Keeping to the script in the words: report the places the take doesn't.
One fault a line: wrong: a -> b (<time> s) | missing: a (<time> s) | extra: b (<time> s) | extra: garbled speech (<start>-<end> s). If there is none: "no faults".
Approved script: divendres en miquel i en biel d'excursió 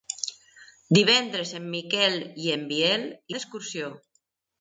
no faults